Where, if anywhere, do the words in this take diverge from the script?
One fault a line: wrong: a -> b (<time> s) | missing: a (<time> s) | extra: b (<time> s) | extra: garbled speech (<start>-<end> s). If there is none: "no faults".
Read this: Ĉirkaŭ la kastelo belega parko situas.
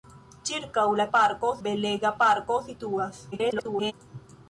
wrong: kastelo -> parko (1.2 s)
extra: garbled speech (3.3-3.9 s)